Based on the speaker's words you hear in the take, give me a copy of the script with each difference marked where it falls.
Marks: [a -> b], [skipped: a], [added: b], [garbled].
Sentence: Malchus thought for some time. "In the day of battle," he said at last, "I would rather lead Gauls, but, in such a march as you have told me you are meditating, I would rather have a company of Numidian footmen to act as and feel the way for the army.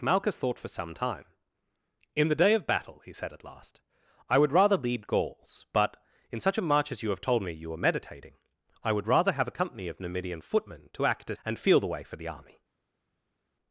Malchus thought for some time. "In the day of battle," he said at last, "I would rather lead Gauls, but, in such a march as you have told me you are meditating, I would rather have a company of Numidian footmen to act as and feel the way for the army.